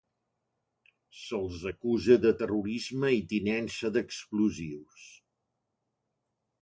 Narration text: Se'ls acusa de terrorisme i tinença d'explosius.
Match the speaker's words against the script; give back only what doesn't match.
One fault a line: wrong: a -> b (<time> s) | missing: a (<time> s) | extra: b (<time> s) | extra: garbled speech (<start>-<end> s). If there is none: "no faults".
no faults